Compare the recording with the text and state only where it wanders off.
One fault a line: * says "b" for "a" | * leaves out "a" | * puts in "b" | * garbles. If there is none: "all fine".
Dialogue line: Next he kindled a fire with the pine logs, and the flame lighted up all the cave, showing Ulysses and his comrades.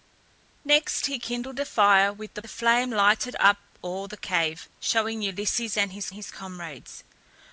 * leaves out "pine logs and"
* puts in "his"